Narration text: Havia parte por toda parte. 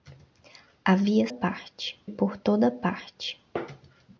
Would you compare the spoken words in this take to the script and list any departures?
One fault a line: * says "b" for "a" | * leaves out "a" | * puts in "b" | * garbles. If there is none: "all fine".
all fine